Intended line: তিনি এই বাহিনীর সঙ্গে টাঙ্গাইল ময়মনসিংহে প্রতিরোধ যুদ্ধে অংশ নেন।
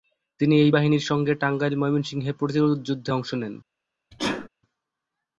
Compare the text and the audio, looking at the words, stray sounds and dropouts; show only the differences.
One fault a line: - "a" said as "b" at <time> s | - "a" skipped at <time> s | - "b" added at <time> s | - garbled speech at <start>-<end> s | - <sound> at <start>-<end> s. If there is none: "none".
- sneeze at 4.1-4.5 s